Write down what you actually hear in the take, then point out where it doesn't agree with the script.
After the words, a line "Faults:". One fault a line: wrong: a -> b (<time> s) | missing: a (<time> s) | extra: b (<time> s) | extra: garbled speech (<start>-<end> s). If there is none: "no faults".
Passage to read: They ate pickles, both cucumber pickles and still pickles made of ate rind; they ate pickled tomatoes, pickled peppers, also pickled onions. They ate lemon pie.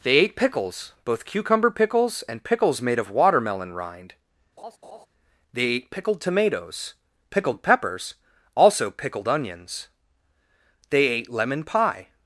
They ate pickles, both cucumber pickles and pickles made of watermelon rind; they ate pickled tomatoes, pickled peppers, also pickled onions. They ate lemon pie.
Faults:
missing: still (2.4 s)
wrong: ate -> watermelon (3.1 s)